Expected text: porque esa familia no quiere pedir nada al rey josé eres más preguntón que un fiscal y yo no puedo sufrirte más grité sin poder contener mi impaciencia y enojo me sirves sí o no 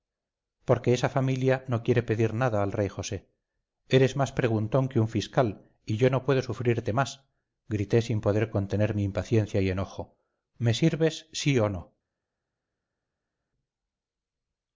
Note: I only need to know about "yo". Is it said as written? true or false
true